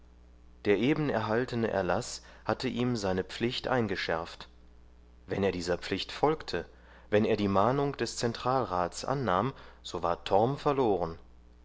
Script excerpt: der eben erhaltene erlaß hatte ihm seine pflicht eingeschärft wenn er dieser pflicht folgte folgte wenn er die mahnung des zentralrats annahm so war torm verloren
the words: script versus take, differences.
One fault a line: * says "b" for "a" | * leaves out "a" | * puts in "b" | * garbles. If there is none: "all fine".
* leaves out "folgte"